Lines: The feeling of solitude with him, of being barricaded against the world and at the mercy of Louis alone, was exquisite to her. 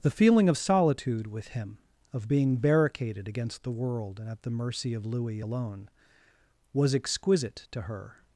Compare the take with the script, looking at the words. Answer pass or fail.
pass